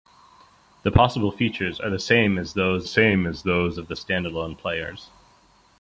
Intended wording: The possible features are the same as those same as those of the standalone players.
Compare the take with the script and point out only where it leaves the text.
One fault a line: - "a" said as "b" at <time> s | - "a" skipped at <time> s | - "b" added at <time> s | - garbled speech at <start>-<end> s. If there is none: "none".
none